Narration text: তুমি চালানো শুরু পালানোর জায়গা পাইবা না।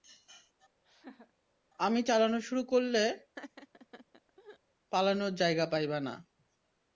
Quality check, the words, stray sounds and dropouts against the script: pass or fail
fail